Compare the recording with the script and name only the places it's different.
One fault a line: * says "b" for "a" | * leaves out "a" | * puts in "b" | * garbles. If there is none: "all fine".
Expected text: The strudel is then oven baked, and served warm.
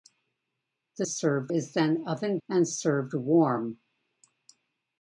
* says "served" for "strudel"
* leaves out "baked"